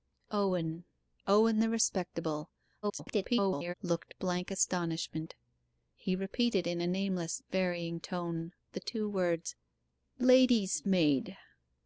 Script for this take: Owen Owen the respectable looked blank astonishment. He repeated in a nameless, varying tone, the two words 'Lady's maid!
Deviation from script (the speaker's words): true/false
true